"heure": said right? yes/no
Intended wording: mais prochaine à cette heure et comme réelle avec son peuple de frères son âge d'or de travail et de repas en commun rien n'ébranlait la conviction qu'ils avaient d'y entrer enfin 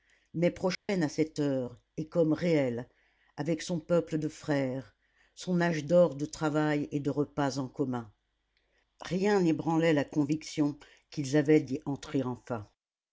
yes